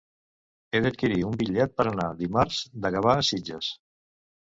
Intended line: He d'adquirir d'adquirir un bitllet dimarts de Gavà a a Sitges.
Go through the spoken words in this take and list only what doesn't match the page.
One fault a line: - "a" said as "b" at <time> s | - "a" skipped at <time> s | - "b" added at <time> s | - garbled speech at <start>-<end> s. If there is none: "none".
- "d'adquirir" skipped at 1.2 s
- "per anar" added at 1.8 s
- "a" skipped at 3.3 s